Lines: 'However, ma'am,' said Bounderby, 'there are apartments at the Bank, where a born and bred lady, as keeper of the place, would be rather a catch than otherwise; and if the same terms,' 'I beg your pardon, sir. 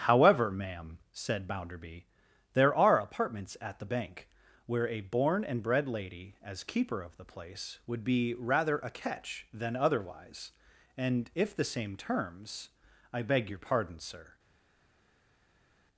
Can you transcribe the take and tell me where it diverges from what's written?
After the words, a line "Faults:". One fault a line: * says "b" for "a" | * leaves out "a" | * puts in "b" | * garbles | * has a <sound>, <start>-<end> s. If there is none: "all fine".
'However, ma'am,' said Bounderby, 'there are apartments at the Bank, where a born and bred lady, as keeper of the place, would be rather a catch than otherwise; and if the same terms,' 'I beg your pardon, sir.
Faults:
all fine